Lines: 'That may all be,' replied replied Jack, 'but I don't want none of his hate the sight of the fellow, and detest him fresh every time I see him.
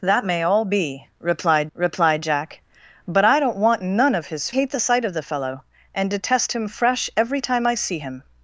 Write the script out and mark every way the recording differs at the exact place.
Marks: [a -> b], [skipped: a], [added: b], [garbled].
'That may all be,' replied replied Jack, 'but I don't want none of his hate the sight of the fellow, and detest him fresh every time I see him.